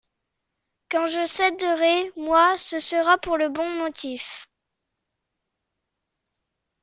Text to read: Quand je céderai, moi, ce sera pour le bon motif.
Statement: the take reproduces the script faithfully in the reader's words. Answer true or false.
true